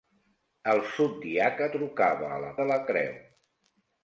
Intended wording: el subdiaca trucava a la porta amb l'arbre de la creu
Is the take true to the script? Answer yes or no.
no